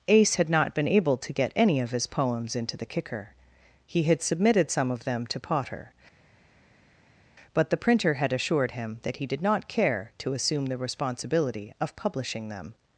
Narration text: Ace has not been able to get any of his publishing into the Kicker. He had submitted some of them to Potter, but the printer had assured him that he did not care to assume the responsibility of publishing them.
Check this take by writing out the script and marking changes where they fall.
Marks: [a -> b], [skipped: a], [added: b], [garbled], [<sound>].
Ace [has -> had] not been able to get any of his [publishing -> poems] into the Kicker. He had submitted some of them to Potter, but the printer had assured him that he did not care to assume the responsibility of publishing them.